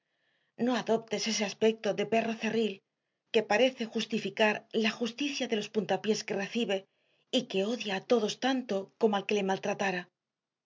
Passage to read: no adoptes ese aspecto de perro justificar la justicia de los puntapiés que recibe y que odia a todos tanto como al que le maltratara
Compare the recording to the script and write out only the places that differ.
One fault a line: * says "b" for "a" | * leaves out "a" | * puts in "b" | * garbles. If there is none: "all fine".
* puts in "cerril que parece"